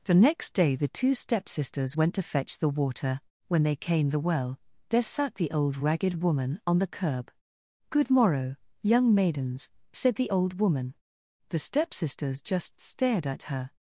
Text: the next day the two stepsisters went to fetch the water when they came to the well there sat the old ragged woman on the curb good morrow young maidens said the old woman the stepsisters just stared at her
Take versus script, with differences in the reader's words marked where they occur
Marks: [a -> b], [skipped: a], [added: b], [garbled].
the next day the two stepsisters went to fetch the water when they came [skipped: to] the well there sat the old ragged woman on the curb good morrow young maidens said the old woman the stepsisters just stared at her